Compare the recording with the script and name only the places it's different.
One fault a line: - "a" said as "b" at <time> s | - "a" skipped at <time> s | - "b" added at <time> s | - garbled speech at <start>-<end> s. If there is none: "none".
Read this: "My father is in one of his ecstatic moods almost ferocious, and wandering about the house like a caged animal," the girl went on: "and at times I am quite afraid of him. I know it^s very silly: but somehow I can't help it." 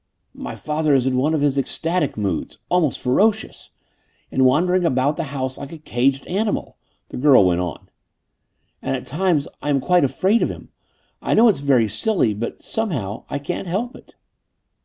none